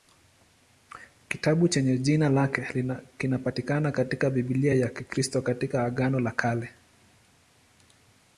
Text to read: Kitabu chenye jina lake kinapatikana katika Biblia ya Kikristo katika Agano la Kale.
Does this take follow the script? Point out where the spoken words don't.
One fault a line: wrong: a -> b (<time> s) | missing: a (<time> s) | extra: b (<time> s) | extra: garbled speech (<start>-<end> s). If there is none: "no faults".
no faults